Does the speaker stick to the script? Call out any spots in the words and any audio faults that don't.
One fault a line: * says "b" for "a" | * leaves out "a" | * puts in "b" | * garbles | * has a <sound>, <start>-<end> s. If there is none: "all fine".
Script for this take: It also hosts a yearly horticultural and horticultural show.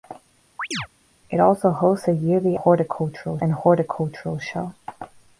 * has a chirp, 0.6-0.9 s